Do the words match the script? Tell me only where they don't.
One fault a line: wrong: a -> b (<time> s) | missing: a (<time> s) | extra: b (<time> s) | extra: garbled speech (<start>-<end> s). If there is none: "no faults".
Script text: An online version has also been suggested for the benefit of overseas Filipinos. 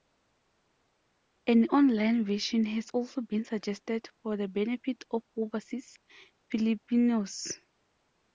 no faults